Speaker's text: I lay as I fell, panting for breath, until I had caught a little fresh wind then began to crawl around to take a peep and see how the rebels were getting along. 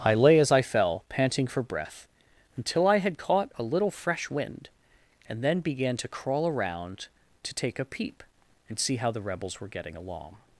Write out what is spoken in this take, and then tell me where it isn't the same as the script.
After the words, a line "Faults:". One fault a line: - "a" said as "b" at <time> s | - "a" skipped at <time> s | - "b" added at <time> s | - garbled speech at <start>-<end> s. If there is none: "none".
I lay as I fell, panting for breath, until I had caught a little fresh wind and then began to crawl around to take a peep and see how the rebels were getting along.
Faults:
- "and" added at 5.3 s